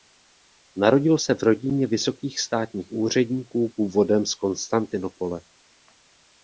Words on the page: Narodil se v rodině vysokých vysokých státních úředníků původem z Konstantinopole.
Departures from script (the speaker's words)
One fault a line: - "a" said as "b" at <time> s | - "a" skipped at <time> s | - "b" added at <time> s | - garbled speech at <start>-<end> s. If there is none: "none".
- "vysokých" skipped at 2.4 s